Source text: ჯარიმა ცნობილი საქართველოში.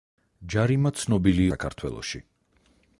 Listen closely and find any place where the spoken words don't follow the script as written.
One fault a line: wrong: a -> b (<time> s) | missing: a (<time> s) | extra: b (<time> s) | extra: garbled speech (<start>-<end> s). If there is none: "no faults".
no faults